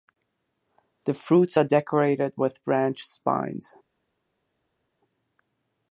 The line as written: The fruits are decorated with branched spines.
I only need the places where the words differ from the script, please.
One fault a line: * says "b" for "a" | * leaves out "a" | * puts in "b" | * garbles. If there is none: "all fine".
all fine